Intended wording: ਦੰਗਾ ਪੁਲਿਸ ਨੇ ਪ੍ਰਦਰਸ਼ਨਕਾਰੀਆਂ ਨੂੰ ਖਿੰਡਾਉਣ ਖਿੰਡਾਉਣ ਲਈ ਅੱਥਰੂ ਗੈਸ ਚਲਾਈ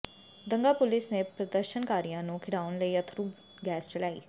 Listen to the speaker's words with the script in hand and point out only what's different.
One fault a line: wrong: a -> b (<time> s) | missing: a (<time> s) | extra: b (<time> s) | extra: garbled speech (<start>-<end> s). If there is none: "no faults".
missing: ਖਿੰਡਾਉਣ (2.8 s)